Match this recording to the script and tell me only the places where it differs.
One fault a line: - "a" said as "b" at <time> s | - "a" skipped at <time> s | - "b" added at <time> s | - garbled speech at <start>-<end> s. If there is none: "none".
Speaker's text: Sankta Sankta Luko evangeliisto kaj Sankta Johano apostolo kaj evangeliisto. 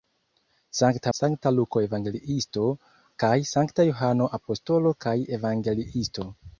none